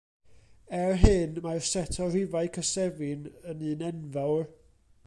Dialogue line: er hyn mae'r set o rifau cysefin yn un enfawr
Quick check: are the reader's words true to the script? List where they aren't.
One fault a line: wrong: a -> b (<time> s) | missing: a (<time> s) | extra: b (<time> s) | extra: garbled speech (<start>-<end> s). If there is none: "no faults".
no faults